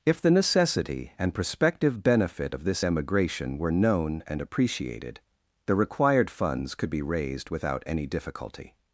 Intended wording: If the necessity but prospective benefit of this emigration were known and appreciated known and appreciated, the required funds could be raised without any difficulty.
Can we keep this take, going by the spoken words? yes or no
no